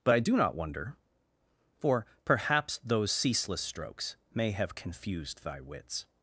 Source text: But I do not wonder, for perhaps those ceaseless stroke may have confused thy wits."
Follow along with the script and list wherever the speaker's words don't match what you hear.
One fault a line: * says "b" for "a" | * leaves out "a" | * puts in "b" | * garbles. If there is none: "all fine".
* says "strokes" for "stroke"